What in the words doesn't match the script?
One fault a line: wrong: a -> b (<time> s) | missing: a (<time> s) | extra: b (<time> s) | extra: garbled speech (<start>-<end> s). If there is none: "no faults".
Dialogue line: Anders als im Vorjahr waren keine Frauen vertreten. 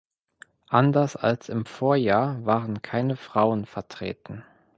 no faults